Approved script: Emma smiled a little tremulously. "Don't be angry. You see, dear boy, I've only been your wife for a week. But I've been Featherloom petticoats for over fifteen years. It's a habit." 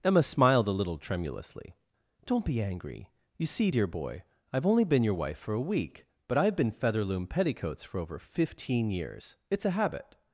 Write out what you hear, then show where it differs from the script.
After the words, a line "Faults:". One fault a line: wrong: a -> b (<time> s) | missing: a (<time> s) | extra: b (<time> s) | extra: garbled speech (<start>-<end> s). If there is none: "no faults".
Emma smiled a little tremulously. "Don't be angry. You see, dear boy, I've only been your wife for a week. But I've been Featherloom petticoats for over fifteen years. It's a habit."
Faults:
no faults